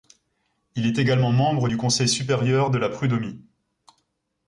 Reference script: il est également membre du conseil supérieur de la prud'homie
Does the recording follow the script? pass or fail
pass